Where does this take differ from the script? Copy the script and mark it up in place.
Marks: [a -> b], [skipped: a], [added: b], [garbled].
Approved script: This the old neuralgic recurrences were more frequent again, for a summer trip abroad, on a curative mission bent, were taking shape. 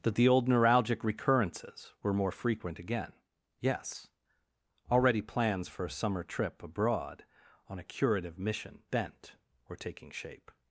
[This -> That] the old neuralgic recurrences were more frequent again, [added: yes Already plans] for a summer trip abroad, on a curative mission bent, were taking shape.